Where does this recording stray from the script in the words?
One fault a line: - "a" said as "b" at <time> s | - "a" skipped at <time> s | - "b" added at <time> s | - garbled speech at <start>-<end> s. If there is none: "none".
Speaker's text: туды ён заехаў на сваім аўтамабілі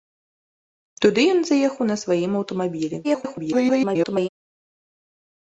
- garbled speech at 3.0-4.3 s